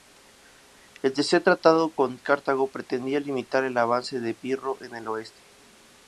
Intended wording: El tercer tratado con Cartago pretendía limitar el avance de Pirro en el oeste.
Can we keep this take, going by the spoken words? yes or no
yes